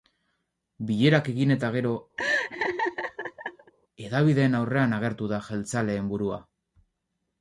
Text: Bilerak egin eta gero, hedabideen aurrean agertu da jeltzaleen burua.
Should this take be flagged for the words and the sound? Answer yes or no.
yes